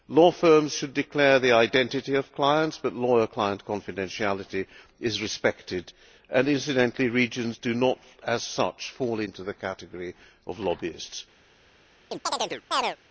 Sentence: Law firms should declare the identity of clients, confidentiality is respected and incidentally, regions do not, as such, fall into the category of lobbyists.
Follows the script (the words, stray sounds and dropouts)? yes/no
no